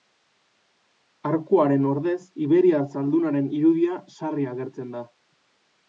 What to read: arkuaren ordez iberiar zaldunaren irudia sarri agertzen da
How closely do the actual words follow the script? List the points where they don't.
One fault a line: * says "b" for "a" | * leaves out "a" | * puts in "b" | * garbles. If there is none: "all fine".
all fine